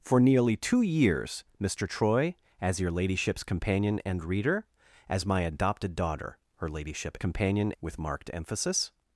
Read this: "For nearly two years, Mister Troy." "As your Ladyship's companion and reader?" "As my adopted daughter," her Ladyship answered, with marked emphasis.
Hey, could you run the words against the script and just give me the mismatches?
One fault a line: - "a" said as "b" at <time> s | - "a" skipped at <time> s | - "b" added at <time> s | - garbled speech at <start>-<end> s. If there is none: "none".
- "answered" said as "companion" at 7.2 s